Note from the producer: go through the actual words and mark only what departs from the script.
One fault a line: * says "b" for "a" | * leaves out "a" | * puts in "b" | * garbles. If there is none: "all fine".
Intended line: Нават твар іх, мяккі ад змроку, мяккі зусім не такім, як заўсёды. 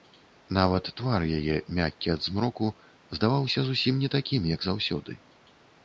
* says "яе" for "іх"
* says "здаваўся" for "мяккі"